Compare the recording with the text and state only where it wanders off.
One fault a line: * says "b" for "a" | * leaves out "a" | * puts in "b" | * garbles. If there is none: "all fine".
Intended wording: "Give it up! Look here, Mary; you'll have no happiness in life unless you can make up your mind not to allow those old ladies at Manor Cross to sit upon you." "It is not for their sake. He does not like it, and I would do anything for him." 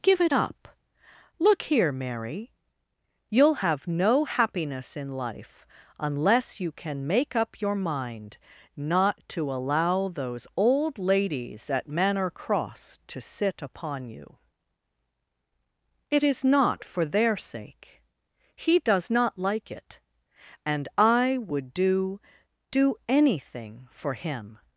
* puts in "do"